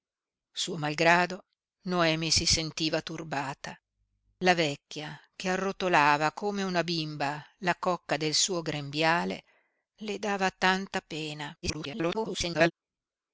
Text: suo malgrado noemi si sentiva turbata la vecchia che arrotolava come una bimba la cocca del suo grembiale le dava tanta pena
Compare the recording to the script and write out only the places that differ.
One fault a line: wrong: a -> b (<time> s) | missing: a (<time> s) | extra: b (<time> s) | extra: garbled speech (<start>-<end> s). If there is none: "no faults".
extra: garbled speech (11.6-12.7 s)